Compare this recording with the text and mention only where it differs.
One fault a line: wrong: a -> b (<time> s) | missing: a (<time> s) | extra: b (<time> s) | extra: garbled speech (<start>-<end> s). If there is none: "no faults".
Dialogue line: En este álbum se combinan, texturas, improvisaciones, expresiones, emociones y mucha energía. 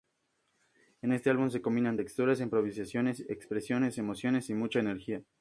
no faults